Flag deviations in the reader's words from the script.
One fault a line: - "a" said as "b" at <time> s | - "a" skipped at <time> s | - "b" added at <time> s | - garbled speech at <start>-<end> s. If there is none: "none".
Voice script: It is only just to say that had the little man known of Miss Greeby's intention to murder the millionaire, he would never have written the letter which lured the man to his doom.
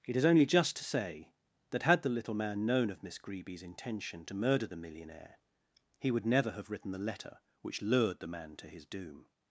none